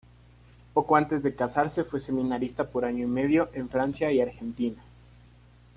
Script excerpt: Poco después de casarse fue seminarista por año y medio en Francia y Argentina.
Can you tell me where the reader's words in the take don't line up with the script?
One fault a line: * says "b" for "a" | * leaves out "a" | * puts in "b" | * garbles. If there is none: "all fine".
* says "antes" for "después"